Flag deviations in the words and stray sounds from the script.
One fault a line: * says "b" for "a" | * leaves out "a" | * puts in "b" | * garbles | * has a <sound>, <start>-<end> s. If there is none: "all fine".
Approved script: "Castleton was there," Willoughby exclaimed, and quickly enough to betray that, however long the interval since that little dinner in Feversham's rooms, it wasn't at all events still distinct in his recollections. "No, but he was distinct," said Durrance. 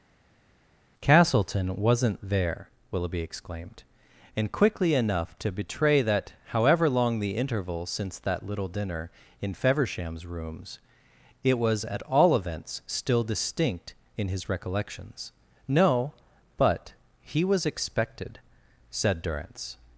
* says "wasn't" for "was"
* says "was" for "wasn't"
* says "expected" for "distinct"